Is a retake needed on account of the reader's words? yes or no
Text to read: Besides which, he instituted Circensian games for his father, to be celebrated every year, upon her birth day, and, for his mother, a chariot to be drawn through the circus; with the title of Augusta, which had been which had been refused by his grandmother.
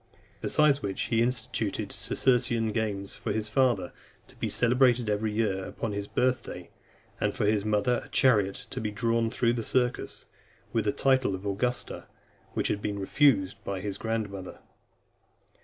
yes